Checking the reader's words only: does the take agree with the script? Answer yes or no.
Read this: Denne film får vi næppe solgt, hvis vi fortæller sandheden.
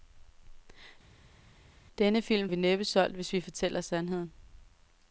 no